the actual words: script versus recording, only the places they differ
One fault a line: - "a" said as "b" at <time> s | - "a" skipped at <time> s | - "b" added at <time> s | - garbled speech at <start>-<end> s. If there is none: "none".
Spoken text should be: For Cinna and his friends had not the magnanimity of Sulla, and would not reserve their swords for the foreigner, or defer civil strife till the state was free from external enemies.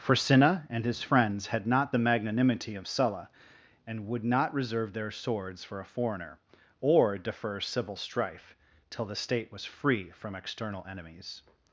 - "the" said as "a" at 5.8 s